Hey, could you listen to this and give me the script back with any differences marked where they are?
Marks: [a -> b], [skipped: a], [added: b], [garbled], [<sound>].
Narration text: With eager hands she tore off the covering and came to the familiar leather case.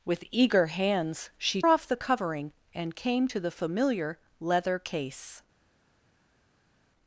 With eager hands she [skipped: tore] off the covering and came to the familiar leather case.